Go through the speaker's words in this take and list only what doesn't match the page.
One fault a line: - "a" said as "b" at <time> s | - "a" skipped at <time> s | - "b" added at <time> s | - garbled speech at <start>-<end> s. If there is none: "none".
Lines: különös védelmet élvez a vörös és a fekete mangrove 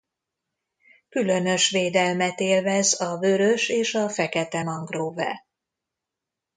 none